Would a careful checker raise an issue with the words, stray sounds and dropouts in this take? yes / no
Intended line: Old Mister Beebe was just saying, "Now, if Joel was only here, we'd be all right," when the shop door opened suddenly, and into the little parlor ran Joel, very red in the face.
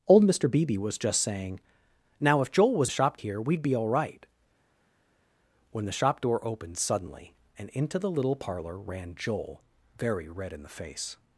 yes